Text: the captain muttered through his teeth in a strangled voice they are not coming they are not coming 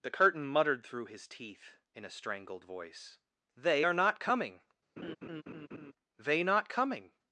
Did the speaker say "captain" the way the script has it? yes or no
no